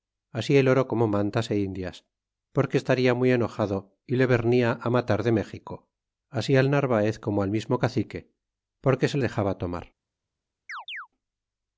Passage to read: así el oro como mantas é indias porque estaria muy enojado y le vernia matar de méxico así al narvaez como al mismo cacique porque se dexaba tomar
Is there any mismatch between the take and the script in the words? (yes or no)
no